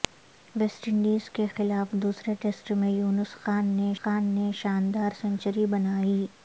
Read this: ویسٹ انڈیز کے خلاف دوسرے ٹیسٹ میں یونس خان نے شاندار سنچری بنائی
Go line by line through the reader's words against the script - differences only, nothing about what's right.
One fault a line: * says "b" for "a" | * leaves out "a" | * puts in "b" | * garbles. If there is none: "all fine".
* puts in "خان نے"